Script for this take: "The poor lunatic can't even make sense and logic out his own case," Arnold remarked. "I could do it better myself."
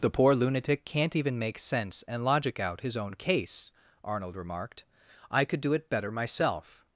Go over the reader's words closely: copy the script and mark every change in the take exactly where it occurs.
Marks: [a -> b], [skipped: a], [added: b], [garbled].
"The poor lunatic can't even make sense and logic out his own case," Arnold remarked. "I could do it better myself."